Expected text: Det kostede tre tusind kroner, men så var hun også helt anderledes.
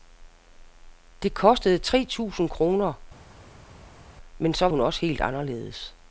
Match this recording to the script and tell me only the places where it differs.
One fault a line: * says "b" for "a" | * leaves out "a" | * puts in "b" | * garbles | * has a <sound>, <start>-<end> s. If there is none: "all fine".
* leaves out "var"